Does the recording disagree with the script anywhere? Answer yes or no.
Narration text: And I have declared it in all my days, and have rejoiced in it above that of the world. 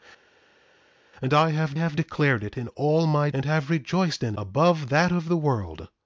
yes